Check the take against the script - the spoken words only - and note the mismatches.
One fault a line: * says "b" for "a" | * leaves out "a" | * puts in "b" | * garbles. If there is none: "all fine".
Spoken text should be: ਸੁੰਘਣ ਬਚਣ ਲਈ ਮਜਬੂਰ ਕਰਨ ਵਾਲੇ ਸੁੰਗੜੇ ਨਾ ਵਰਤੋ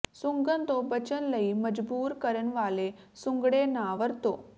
* puts in "ਤੋਂ"